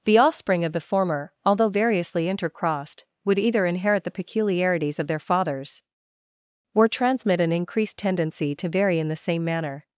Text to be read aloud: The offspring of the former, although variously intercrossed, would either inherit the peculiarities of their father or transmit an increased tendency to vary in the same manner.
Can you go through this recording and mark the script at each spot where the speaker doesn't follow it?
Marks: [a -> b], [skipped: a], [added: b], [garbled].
The offspring of the former, although variously intercrossed, would either inherit the peculiarities of their [father -> fathers] or transmit an increased tendency to vary in the same manner.